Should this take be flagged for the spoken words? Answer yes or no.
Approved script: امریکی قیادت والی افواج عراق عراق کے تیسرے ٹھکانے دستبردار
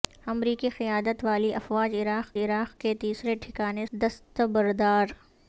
no